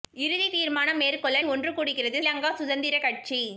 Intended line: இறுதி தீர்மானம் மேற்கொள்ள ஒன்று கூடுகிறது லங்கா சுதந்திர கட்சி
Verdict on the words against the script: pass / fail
pass